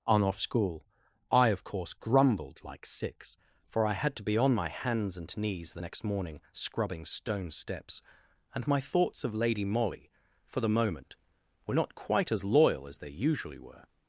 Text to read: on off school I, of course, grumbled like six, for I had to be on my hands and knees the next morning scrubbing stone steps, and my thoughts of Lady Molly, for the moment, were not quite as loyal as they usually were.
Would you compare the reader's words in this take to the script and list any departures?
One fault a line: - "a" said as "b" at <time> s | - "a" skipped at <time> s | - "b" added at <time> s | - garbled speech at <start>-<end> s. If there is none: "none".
none